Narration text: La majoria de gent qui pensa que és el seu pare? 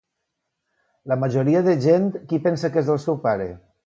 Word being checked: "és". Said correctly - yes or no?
yes